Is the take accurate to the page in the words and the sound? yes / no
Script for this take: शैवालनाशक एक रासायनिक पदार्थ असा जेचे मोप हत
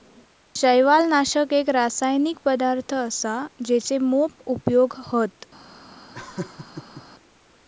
no